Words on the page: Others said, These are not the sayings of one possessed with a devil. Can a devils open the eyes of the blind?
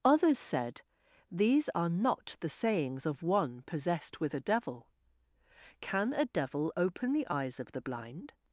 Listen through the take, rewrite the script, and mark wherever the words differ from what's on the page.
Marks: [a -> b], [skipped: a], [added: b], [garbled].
Others said, These are not the sayings of one possessed with a devil. Can a [devils -> devil] open the eyes of the blind?